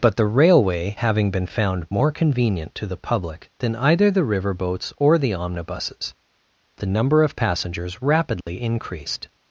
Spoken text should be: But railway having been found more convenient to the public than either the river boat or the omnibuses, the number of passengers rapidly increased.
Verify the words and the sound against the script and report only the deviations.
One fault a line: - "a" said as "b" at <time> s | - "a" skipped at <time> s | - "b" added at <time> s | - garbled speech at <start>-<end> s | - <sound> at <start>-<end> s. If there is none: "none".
- "the" added at 0.1 s
- "boat" said as "boats" at 4.5 s
- dropout at 8.4-8.5 s